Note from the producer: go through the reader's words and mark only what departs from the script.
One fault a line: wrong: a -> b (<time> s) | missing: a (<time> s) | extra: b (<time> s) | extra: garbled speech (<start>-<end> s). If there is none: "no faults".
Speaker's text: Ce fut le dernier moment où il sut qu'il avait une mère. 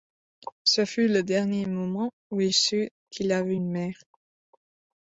no faults